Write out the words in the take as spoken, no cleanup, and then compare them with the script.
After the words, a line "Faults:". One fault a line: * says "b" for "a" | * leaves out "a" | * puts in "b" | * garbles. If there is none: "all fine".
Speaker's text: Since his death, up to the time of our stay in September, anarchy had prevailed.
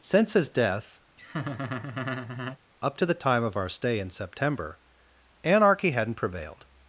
Since his death, up to the time of our stay in September, anarchy hadn't prevailed.
Faults:
* says "hadn't" for "had"